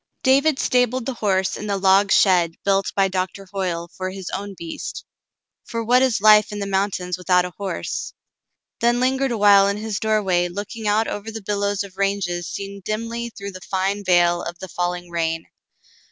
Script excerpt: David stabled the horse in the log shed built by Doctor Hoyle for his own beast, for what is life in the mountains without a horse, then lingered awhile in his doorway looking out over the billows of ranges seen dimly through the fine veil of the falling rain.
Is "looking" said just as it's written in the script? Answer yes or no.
yes